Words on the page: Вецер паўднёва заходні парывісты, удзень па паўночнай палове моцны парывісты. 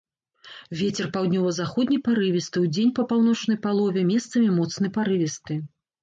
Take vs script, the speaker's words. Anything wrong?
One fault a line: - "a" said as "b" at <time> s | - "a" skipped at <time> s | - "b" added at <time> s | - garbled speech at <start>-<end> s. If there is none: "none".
- "месцамі" added at 4.1 s